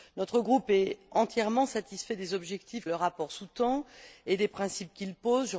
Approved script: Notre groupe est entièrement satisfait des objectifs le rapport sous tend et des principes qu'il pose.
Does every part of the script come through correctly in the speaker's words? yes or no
yes